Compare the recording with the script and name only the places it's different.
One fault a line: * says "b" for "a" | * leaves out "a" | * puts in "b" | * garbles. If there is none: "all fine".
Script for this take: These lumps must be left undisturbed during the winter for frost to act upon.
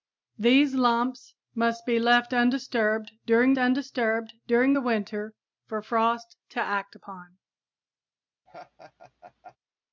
* puts in "undisturbed during"